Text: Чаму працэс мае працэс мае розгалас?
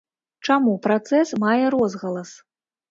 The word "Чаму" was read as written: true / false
true